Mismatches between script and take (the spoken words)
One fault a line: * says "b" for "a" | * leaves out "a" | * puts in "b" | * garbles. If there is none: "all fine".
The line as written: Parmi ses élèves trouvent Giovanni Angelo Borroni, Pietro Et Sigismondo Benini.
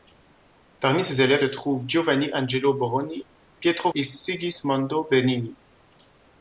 all fine